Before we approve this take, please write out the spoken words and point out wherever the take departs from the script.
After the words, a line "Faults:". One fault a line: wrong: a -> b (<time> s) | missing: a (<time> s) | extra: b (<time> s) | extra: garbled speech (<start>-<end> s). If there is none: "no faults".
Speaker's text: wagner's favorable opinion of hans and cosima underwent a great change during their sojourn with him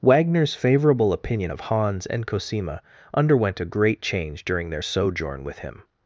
wagner's favorable opinion of hans and cosima underwent a great change during their sojourn with him
Faults:
no faults